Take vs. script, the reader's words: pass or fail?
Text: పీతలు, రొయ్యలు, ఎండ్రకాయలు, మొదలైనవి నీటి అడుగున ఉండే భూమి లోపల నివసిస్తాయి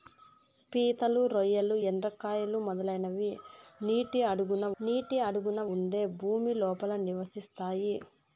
fail